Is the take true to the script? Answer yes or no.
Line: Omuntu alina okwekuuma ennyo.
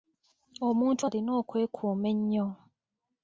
yes